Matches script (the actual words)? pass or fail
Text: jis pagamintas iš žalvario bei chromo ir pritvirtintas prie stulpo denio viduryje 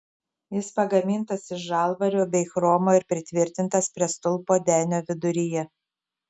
pass